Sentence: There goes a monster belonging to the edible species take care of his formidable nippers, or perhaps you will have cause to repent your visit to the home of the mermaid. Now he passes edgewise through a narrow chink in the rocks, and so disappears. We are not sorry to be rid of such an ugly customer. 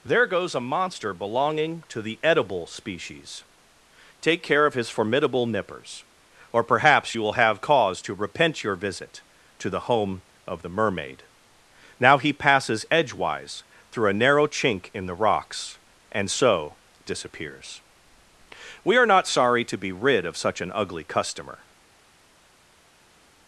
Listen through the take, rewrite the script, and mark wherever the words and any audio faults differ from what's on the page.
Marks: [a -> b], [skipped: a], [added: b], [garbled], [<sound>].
There goes a monster belonging to the edible species take care of his formidable nippers, or perhaps you will have cause to repent your visit to the home of the mermaid. Now he passes edgewise through a narrow chink in the rocks, and so disappears. We are not sorry to be rid of such an ugly customer.